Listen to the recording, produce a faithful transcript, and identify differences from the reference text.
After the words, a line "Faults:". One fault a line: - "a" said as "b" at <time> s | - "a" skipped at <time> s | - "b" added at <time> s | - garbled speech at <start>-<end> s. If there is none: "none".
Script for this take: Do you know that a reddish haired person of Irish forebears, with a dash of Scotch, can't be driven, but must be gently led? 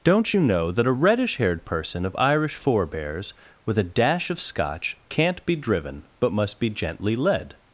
Don't you know that a reddish haired person of Irish forebears, with a dash of Scotch, can't be driven, but must be gently led?
Faults:
- "Do" said as "Don't" at 0.0 s